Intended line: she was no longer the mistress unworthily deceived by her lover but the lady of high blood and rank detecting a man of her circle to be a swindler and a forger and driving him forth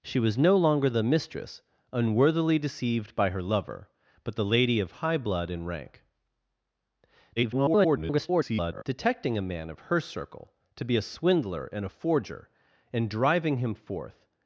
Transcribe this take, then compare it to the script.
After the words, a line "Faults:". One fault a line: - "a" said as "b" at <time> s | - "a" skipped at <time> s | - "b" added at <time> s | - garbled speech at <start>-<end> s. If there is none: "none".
she was no longer the mistress unworthily deceived by her lover but the lady of high blood and rank [garbled] detecting a man of her circle to be a swindler and a forger and driving him forth
Faults:
- garbled speech at 7.4-8.8 s